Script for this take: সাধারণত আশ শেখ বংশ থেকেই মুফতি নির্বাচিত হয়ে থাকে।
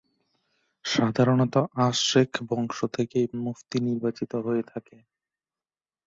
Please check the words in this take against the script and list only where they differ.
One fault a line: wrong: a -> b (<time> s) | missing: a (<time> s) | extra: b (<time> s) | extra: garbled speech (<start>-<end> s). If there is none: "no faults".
no faults